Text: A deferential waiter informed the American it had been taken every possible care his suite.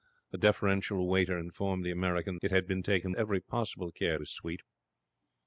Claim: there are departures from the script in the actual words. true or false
false